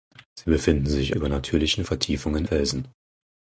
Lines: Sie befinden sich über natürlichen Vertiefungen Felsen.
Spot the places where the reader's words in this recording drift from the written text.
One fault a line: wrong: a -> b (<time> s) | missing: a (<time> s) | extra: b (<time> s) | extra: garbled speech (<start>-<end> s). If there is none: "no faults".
no faults